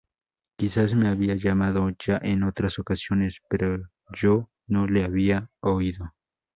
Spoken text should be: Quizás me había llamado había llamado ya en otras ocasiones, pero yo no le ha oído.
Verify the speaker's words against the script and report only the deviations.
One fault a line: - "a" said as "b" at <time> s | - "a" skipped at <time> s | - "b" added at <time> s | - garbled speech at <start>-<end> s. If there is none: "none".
- "había llamado" skipped at 1.9 s
- "ha" said as "había" at 5.0 s